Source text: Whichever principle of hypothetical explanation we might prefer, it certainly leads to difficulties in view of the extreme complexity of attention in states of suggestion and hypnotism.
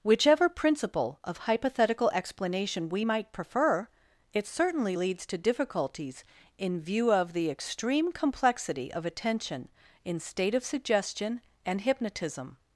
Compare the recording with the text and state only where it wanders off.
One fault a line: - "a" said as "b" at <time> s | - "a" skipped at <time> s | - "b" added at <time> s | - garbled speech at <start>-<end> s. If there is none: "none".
- "states" said as "state" at 10.2 s